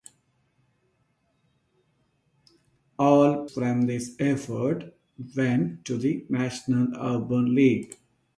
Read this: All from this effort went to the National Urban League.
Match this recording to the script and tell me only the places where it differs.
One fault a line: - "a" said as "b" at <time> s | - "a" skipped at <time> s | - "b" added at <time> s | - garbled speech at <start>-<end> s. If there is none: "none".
none